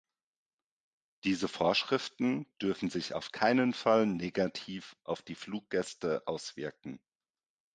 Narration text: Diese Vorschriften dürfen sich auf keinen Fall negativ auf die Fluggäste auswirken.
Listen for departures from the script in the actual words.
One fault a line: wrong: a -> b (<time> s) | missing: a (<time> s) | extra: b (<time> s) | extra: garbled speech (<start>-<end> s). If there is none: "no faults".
no faults